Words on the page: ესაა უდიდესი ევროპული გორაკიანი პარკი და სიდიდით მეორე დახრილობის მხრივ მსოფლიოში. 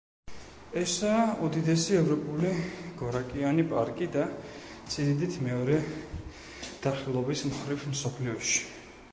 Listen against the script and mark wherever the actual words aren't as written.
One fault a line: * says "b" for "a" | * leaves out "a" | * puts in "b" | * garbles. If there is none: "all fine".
all fine